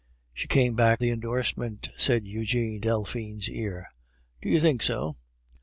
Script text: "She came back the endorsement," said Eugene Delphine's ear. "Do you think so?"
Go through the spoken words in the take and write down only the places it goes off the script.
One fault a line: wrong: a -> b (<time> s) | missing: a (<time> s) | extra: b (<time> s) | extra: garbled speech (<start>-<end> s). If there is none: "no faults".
no faults